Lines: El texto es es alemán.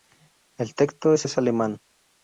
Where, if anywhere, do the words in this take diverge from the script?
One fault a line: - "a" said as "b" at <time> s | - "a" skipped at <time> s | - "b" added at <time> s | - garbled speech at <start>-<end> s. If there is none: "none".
none